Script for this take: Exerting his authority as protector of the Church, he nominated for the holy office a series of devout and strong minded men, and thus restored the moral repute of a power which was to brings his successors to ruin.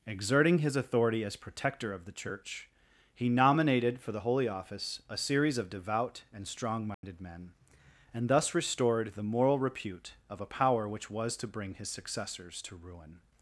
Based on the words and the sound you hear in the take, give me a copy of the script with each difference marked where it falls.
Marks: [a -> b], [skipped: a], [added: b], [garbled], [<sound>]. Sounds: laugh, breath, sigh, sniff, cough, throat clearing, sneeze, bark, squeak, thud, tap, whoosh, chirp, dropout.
Exerting his authority as protector of the Church, he nominated for the holy office a series of devout and strong minded [dropout] men, and thus restored the moral repute of a power which was to [brings -> bring] his successors to ruin.